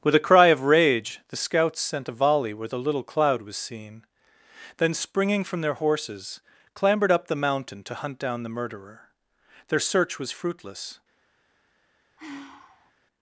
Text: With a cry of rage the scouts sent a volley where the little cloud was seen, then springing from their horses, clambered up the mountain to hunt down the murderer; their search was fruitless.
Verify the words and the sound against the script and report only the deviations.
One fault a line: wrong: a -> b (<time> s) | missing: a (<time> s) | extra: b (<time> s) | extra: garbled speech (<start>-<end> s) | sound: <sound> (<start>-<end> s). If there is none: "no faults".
sound: sigh (12.2-12.9 s)